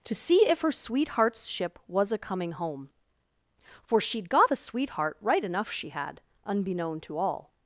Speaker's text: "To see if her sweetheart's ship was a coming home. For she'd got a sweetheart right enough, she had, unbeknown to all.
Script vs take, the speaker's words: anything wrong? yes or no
no